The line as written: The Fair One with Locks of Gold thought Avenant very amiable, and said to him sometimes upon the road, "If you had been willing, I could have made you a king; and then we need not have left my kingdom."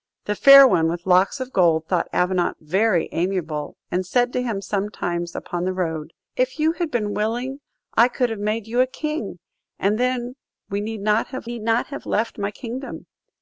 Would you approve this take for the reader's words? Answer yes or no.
no